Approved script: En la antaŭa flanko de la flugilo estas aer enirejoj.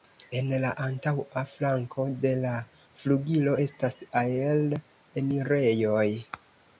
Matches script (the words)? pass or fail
pass